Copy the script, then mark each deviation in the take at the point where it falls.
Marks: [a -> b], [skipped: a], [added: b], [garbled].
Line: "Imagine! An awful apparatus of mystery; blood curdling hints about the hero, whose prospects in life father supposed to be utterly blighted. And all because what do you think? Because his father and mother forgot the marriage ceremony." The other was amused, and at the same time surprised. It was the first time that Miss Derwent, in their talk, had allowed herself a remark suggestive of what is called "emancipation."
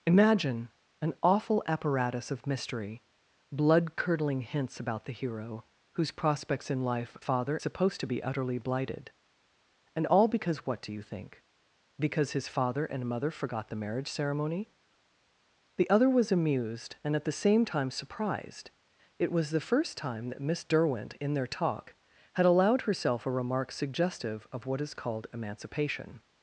"Imagine! An awful apparatus of mystery; blood curdling hints about the hero, whose prospects in life father supposed to be utterly blighted. And all because what do you think? Because his father and mother forgot the marriage ceremony." The other was amused, and at the same time surprised. It was the first time that Miss Derwent, in their talk, had allowed herself a remark suggestive of what is called "emancipation."